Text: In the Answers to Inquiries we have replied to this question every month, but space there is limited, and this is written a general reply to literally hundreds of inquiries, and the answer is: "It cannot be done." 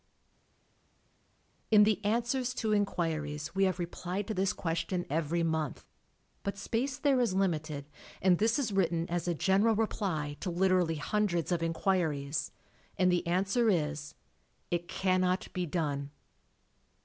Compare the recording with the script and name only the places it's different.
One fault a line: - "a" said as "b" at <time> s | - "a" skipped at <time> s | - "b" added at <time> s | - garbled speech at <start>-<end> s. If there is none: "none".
- "as" added at 9.1 s